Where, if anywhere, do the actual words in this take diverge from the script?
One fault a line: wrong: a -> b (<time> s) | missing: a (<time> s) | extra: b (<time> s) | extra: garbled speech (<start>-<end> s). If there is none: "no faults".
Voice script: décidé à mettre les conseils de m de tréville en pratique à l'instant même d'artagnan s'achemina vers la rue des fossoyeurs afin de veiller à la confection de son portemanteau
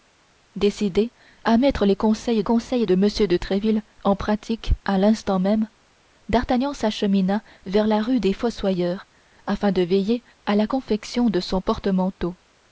extra: conseils (2.4 s)